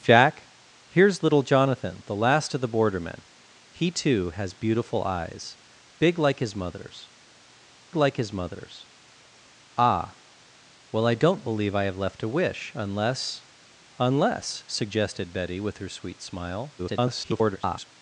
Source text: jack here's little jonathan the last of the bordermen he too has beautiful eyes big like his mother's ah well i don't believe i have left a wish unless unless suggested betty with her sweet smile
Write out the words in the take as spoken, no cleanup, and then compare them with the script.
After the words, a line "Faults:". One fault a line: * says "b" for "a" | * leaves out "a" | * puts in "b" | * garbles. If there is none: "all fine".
jack here's little jonathan the last of the bordermen he too has beautiful eyes big like his mother's like his mother's ah well i don't believe i have left a wish unless unless suggested betty with her sweet smile [garbled]
Faults:
* puts in "like his mother's"
* garbles